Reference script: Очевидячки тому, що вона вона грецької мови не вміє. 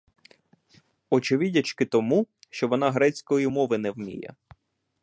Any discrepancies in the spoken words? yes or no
yes